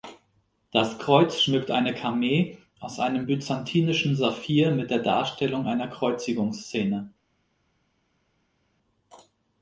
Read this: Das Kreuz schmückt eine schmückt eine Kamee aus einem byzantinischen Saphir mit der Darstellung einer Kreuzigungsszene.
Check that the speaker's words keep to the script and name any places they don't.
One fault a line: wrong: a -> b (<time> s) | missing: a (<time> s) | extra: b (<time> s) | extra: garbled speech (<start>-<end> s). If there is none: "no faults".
missing: schmückt eine (1.9 s)